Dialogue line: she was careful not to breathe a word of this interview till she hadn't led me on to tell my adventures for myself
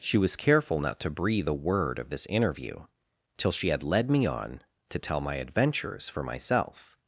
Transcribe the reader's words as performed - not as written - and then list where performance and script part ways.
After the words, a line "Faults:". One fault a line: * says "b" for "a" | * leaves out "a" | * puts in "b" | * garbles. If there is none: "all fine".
she was careful not to breathe a word of this interview till she had led me on to tell my adventures for myself
Faults:
* says "had" for "hadn't"